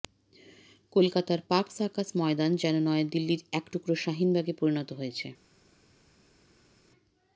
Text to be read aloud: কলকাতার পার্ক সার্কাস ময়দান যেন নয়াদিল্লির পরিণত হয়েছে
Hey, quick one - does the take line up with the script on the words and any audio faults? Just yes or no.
no